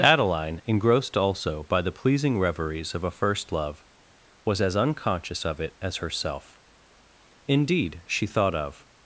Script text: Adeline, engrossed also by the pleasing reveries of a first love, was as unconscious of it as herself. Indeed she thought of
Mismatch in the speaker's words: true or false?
false